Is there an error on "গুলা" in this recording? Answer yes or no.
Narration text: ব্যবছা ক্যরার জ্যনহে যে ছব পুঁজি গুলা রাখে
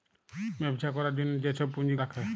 yes